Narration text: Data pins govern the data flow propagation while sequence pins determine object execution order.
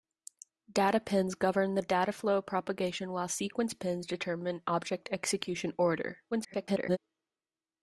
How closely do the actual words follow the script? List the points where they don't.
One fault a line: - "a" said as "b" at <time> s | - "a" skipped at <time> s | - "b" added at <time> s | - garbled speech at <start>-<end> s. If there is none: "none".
- garbled speech at 6.3-7.0 s